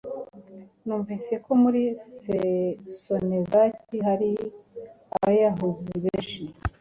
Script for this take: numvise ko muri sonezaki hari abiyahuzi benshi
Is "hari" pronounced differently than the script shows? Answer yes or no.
no